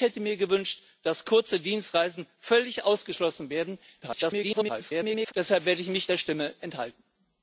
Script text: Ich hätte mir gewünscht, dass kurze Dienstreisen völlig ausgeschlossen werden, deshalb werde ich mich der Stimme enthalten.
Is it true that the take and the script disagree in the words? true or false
true